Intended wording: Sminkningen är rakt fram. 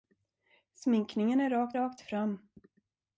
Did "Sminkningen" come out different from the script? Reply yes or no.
no